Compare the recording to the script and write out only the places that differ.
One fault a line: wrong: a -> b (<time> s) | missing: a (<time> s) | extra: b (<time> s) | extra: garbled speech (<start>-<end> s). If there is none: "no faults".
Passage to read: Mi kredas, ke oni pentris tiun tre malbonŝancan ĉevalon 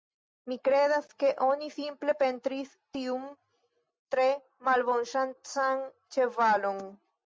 extra: simple (1.7 s)